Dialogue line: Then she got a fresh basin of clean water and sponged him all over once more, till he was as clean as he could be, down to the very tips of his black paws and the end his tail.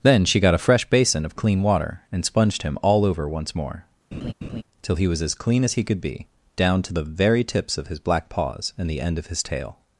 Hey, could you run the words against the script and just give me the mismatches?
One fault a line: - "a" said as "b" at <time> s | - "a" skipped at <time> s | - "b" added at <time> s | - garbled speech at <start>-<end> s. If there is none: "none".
- "of" added at 9.2 s